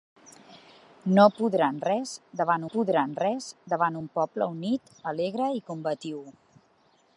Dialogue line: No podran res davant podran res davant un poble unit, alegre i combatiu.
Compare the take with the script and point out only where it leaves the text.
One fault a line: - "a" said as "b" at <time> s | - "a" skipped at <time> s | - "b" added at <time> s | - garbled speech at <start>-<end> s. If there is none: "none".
none